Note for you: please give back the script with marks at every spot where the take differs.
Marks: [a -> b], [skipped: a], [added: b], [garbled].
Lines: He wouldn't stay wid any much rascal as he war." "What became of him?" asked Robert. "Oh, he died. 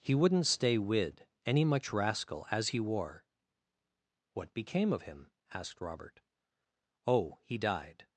He wouldn't stay wid any much rascal as he war." "What became of him?" asked Robert. "Oh, he died.